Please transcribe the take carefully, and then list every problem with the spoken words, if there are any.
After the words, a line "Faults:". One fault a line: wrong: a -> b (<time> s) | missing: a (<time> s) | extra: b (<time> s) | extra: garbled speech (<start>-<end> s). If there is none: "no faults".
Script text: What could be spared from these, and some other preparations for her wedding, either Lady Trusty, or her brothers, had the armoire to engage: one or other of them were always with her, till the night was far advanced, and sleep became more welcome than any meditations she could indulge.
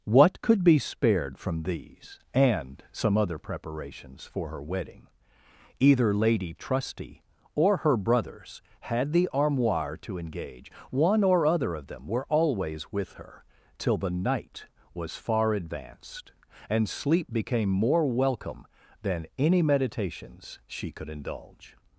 What could be spared from these, and some other preparations for her wedding, either Lady Trusty, or her brothers, had the armoire to engage: one or other of them were always with her, till the night was far advanced, and sleep became more welcome than any meditations she could indulge.
Faults:
no faults